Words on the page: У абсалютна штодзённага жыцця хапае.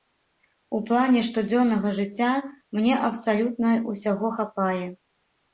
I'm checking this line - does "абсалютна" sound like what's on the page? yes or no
no